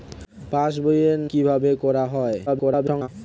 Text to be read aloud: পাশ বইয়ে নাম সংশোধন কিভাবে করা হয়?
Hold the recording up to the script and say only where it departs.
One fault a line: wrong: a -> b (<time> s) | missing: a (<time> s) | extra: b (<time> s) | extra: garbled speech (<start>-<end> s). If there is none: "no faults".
missing: নাম সংশোধন (1.1 s)
extra: garbled speech (2.5-3.1 s)